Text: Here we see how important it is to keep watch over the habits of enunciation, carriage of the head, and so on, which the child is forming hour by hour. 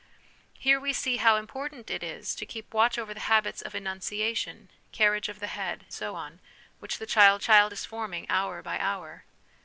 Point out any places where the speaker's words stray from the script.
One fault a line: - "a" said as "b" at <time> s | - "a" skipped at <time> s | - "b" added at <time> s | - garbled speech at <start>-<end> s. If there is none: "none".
- "and" skipped at 5.8 s
- "child" added at 7.4 s